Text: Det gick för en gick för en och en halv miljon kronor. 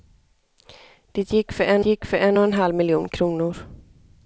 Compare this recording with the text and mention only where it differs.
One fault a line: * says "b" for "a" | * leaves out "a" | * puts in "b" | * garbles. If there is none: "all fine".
all fine